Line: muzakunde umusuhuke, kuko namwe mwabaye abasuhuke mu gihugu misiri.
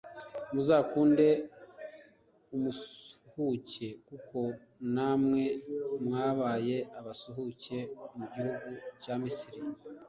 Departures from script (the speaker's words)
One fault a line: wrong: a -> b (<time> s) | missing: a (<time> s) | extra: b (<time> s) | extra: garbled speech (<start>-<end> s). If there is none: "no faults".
extra: cya (9.0 s)